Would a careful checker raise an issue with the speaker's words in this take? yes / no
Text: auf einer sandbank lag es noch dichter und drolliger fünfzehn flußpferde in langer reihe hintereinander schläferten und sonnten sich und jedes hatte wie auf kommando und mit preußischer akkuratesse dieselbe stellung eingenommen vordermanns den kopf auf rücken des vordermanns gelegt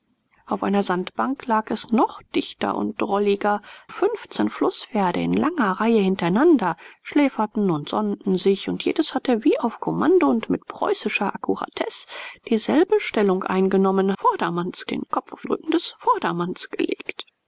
no